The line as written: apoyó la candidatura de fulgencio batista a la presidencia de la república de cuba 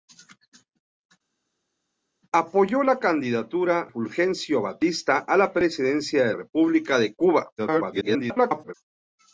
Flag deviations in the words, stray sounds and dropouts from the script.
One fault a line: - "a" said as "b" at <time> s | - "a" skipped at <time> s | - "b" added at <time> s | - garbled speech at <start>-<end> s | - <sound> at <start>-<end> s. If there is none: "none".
- "de" skipped at 3.9 s
- "la" skipped at 6.3 s
- garbled speech at 7.6-8.7 s